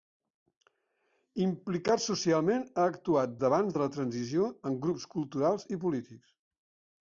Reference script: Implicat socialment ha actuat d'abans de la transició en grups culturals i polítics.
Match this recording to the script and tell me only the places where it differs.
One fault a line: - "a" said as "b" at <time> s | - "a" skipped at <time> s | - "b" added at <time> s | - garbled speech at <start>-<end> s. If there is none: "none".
none